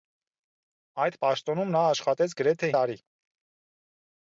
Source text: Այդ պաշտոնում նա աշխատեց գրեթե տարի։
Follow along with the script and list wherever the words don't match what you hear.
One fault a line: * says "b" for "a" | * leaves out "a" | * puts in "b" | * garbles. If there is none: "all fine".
all fine